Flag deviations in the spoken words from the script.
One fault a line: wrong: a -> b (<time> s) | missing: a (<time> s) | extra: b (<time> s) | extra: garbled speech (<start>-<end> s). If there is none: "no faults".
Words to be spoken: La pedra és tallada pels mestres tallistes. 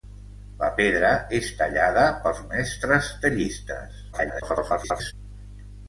extra: garbled speech (4.1-5.1 s)